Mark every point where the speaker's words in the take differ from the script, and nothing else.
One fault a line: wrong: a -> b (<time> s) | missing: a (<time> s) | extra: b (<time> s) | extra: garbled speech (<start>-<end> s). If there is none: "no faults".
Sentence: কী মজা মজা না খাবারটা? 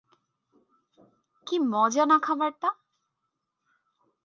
missing: মজা (2.0 s)